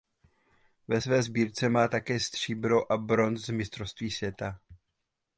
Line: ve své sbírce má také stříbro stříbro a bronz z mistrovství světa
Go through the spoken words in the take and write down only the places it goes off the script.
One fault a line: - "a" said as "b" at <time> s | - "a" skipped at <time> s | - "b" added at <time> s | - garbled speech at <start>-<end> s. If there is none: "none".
- "stříbro" skipped at 2.9 s